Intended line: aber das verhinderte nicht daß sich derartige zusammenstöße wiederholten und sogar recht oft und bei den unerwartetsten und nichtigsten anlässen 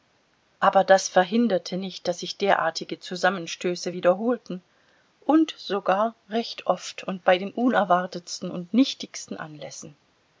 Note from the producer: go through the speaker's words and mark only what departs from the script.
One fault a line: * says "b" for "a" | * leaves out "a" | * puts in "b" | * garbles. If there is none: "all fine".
all fine